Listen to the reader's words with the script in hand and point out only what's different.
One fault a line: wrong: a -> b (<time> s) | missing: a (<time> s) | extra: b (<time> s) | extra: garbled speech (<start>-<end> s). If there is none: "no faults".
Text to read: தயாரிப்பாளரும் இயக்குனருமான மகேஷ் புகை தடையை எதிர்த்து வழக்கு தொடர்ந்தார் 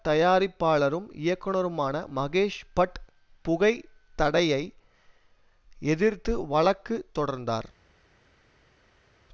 extra: பட் (2.7 s)